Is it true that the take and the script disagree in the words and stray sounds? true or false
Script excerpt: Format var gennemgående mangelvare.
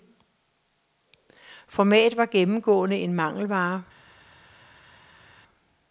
true